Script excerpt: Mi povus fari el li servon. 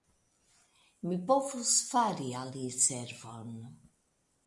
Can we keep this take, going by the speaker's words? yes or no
no